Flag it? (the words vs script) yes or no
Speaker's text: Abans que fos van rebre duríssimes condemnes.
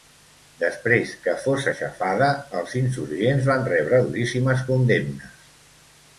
yes